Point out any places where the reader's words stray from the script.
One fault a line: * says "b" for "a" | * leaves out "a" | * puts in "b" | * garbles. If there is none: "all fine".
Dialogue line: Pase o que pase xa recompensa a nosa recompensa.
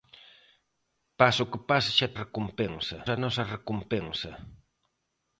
all fine